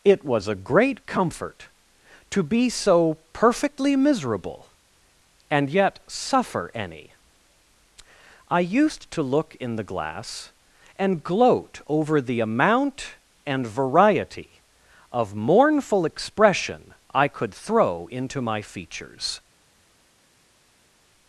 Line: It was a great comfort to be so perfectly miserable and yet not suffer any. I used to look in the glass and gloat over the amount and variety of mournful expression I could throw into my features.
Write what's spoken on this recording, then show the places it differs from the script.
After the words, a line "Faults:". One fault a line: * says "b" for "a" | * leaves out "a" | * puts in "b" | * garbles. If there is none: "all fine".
It was a great comfort to be so perfectly miserable and yet suffer any. I used to look in the glass and gloat over the amount and variety of mournful expression I could throw into my features.
Faults:
* leaves out "not"